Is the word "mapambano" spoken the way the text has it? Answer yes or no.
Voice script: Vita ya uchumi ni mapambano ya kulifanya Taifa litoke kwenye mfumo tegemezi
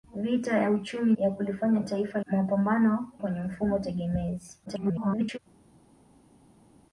no